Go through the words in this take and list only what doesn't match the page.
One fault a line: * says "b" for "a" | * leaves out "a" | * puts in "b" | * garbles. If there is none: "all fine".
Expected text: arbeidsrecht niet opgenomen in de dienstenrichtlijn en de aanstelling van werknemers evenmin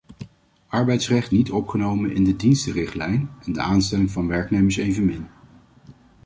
all fine